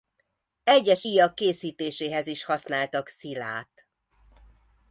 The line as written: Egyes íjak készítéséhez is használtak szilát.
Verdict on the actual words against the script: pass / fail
pass